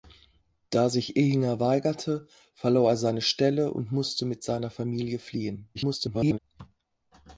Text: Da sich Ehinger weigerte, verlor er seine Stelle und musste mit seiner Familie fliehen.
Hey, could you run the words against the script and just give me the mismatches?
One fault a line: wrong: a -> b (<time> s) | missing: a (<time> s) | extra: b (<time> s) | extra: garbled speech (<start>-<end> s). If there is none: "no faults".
extra: garbled speech (5.7-6.4 s)